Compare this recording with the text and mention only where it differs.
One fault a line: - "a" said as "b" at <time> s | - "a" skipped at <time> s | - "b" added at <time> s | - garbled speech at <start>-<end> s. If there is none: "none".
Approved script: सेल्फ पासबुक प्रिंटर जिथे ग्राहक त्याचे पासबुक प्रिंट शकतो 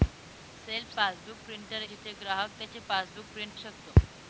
none